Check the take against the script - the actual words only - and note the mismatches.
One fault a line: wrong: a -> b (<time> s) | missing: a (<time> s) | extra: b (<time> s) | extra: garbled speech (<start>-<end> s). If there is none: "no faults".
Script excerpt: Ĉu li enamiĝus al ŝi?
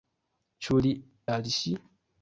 missing: enamiĝus (0.9 s)